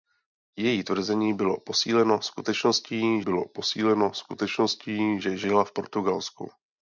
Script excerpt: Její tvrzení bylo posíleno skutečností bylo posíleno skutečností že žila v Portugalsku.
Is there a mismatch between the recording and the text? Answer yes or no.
no